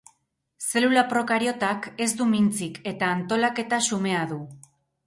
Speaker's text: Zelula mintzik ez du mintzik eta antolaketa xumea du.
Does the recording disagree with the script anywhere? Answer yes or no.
yes